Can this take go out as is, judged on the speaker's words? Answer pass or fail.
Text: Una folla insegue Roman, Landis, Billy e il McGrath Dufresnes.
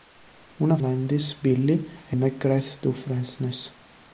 fail